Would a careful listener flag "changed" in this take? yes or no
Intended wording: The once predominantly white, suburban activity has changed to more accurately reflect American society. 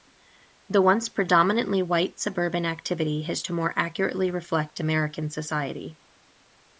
yes